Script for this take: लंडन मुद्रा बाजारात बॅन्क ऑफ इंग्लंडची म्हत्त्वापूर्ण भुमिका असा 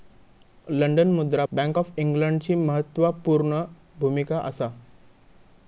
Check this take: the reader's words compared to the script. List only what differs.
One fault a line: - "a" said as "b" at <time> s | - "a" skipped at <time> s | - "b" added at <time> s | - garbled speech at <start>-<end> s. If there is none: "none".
- "बाजारात" skipped at 1.4 s